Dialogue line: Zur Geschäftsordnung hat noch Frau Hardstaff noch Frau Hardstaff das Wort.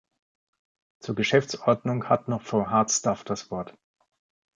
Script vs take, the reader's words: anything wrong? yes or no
yes